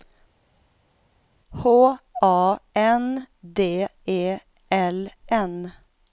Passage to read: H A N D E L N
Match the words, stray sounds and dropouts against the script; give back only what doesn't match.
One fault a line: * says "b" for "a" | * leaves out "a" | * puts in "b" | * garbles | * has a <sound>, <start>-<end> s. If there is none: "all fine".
all fine